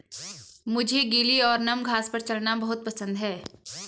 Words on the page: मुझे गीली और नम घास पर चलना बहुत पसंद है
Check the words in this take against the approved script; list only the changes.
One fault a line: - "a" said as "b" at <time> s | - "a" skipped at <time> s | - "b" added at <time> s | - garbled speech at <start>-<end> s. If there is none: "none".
none